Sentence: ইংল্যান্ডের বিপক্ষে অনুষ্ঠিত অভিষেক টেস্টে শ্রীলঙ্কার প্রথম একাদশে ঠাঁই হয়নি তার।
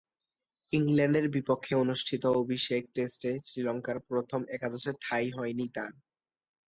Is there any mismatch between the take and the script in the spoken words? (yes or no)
no